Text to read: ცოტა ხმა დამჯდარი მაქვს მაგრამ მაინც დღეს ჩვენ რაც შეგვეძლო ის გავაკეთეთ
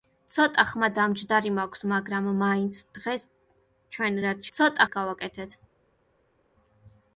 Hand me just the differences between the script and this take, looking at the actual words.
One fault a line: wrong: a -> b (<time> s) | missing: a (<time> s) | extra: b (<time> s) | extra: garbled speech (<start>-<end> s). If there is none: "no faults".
wrong: შეგვეძლო -> ცოტა (4.6 s)